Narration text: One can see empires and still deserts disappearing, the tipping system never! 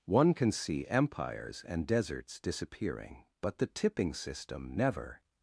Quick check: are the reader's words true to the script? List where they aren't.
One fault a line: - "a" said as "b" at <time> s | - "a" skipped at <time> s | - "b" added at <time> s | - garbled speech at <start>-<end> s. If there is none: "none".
- "still" skipped at 1.9 s
- "but" added at 3.4 s